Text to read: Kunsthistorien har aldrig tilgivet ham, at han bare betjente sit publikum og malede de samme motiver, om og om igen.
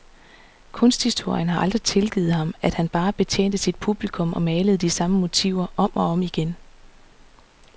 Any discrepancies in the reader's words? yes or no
no